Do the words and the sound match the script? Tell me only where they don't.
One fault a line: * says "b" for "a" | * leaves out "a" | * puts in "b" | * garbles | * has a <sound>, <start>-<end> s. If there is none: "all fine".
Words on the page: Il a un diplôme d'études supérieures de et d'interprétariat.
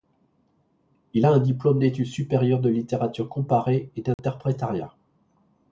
* puts in "littérature comparée"
* has a dropout, 4.1-4.2 s